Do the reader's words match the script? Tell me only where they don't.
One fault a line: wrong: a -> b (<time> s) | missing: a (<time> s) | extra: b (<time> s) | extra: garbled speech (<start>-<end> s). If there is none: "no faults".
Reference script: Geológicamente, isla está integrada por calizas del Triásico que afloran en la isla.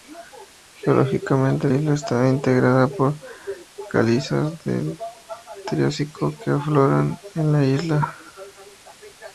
no faults